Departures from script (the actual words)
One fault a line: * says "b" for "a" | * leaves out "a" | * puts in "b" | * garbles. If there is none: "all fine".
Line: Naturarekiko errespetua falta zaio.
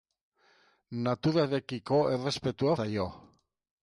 * leaves out "falta"